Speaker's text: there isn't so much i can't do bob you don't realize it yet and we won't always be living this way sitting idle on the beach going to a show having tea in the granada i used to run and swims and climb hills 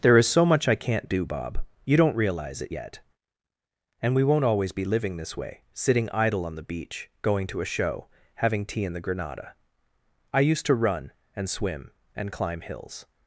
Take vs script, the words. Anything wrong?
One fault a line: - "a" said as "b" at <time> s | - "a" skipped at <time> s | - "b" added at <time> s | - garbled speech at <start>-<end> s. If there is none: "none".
- "isn't" said as "is" at 0.2 s
- "swims" said as "swim" at 11.5 s